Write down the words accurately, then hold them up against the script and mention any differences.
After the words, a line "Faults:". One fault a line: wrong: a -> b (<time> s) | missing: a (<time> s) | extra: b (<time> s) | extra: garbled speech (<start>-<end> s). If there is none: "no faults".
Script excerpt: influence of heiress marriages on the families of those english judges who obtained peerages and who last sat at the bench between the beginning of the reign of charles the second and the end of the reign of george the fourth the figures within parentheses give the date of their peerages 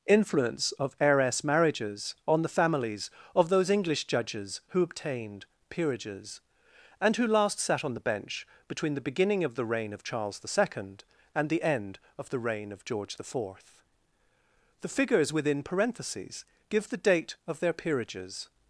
influence of heiress marriages on the families of those english judges who obtained peerages and who last sat on the bench between the beginning of the reign of charles the second and the end of the reign of george the fourth the figures within parentheses give the date of their peerages
Faults:
wrong: at -> on (7.8 s)